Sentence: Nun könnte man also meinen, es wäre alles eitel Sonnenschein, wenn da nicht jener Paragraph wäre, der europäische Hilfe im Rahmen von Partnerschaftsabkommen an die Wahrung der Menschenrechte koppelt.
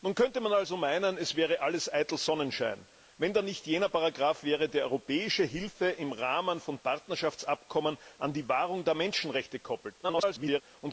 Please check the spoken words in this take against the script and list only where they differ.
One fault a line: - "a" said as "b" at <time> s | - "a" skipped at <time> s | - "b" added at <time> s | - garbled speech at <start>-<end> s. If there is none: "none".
- garbled speech at 10.0-10.6 s